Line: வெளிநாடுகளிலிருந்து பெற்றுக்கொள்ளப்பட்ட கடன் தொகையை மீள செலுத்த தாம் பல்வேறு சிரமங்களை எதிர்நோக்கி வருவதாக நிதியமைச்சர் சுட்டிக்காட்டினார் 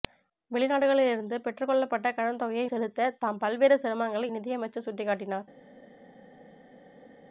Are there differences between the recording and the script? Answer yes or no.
yes